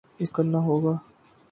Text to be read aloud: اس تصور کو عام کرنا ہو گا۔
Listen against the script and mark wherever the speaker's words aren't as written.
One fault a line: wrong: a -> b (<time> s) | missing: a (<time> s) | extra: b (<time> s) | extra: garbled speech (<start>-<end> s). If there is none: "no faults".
missing: تصور کو عام (0.3 s)